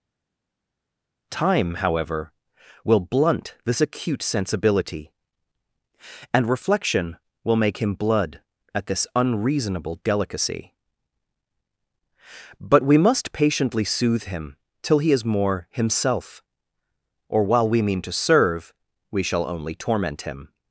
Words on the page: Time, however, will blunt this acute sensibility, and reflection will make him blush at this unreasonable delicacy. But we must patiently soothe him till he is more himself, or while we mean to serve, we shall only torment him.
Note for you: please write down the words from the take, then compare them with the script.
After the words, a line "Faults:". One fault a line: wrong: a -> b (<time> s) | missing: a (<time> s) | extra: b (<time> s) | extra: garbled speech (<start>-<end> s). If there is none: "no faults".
Time, however, will blunt this acute sensibility, and reflection will make him blood at this unreasonable delicacy. But we must patiently soothe him till he is more himself, or while we mean to serve, we shall only torment him.
Faults:
wrong: blush -> blood (7.9 s)